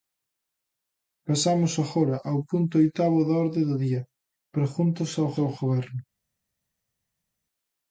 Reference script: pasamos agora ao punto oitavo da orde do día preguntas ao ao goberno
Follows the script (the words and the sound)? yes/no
yes